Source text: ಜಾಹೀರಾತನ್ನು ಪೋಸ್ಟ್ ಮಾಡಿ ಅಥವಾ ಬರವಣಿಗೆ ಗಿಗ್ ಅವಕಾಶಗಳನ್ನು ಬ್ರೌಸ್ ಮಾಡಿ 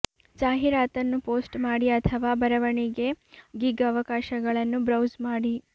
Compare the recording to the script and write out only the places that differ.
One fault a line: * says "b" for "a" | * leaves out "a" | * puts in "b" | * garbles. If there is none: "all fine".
all fine